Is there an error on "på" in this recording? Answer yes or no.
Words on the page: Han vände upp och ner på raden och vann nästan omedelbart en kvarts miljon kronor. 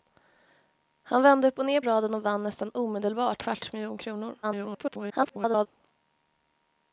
yes